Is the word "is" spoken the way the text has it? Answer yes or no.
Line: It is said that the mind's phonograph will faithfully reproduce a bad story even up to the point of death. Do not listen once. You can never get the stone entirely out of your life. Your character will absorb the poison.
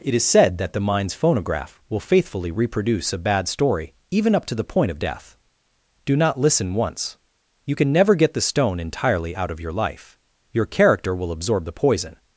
yes